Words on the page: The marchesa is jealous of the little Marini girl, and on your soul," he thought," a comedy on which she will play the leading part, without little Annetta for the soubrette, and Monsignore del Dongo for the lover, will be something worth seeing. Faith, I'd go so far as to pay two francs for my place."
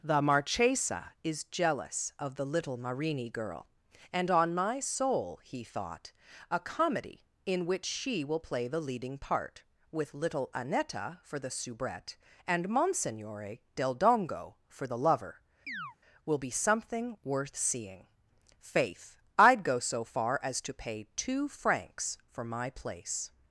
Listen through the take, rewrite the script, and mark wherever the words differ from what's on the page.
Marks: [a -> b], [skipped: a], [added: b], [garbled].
The marchesa is jealous of the little Marini girl, and on [your -> my] soul," he thought," a comedy [on -> in] which she will play the leading part, [without -> with] little Annetta for the soubrette, and Monsignore del Dongo for the lover, will be something worth seeing. Faith, I'd go so far as to pay two francs for my place."